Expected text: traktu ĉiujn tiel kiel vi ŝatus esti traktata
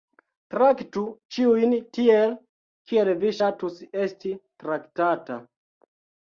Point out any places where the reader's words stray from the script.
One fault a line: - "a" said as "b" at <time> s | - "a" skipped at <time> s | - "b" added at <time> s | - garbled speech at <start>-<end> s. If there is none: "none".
none